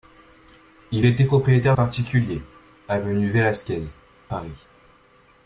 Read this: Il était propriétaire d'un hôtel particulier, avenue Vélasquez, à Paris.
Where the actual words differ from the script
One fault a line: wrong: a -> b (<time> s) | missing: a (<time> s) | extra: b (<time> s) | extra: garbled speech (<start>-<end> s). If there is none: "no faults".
missing: d'un hôtel (1.8 s)
missing: à (3.8 s)